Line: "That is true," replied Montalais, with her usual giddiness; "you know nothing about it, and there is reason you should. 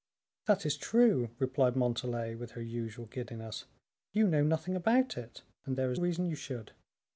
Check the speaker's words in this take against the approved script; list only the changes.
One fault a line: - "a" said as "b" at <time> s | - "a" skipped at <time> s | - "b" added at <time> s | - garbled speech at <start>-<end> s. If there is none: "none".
none